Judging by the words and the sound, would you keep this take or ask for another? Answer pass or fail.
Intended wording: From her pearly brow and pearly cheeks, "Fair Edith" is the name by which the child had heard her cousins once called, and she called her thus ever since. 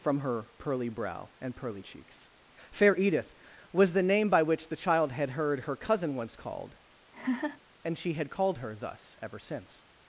fail